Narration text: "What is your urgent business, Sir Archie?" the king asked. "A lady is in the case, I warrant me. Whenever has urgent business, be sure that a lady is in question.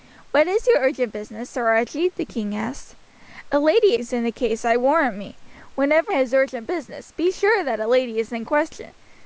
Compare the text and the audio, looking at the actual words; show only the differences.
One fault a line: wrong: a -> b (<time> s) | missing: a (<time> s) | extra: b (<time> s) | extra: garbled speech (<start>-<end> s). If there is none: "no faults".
no faults